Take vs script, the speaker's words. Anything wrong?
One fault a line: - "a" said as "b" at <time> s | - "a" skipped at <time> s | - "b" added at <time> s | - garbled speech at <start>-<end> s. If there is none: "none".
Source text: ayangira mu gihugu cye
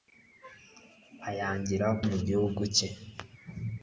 none